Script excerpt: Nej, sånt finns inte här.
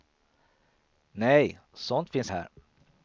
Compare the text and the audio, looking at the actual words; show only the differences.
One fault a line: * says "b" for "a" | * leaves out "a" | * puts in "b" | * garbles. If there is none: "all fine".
* leaves out "inte"